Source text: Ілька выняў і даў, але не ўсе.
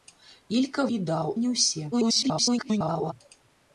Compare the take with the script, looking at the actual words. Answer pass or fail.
fail